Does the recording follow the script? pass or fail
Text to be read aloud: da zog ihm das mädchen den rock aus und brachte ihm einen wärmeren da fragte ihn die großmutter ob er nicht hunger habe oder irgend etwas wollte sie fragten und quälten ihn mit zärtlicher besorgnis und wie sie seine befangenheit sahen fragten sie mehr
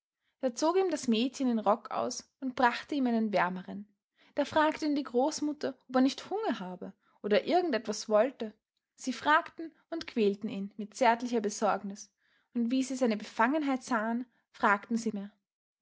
pass